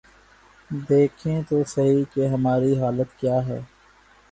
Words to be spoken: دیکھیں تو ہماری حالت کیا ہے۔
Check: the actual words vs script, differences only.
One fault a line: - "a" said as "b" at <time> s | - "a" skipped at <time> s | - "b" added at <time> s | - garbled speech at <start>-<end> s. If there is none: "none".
- "سہی کہ" added at 1.7 s